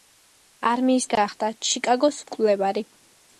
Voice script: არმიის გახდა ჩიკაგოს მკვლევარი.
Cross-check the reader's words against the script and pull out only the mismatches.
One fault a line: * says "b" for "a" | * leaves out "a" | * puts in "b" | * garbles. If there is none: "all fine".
all fine